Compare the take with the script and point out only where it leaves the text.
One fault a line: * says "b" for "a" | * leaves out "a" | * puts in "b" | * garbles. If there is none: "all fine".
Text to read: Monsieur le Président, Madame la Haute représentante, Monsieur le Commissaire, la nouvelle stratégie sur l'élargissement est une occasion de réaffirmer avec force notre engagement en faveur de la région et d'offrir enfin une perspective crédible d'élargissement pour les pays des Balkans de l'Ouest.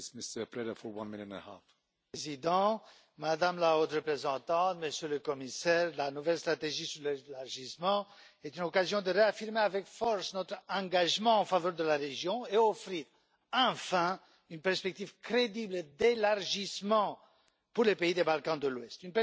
all fine